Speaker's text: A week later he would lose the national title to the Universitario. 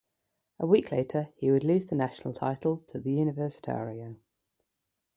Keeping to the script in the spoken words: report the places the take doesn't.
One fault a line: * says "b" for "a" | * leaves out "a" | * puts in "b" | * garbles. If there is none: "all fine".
all fine